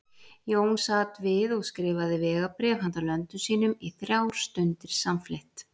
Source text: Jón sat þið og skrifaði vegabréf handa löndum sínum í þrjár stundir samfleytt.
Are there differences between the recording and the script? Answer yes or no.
yes